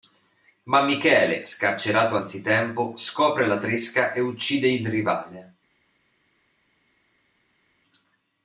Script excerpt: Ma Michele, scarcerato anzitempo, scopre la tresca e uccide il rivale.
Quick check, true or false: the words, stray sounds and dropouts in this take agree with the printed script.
true